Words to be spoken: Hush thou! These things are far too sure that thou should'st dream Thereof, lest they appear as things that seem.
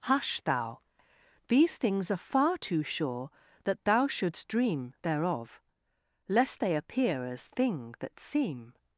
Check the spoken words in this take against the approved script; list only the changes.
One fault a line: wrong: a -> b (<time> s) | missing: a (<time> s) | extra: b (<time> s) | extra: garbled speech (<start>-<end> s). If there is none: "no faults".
wrong: things -> thing (7.4 s)